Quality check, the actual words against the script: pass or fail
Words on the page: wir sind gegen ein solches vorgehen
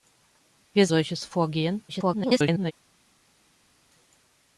fail